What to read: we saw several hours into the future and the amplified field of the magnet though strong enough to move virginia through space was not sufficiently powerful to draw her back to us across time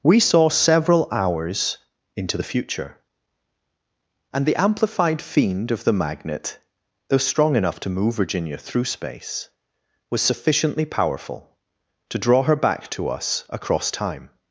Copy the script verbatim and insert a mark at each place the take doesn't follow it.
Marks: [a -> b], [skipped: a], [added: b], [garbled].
we saw several hours into the future and the amplified [field -> fiend] of the magnet though strong enough to move virginia through space was [skipped: not] sufficiently powerful to draw her back to us across time